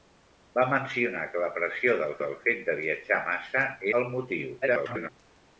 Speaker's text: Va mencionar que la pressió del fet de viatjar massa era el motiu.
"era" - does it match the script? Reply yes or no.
no